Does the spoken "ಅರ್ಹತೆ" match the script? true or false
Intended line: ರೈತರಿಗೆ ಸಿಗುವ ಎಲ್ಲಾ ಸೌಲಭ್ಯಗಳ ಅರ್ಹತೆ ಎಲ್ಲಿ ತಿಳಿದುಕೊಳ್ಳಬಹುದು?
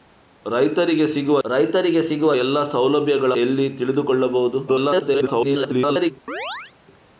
false